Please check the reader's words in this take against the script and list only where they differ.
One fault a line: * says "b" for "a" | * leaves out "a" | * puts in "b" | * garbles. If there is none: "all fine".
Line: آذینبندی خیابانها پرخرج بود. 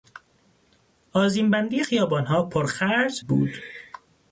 all fine